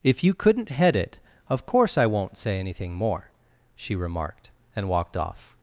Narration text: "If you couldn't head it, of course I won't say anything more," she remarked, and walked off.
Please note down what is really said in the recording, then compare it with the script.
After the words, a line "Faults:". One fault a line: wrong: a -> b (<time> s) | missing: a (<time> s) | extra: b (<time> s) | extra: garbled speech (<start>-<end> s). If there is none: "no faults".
"If you couldn't head it, of course I won't say anything more," she remarked, and walked off.
Faults:
no faults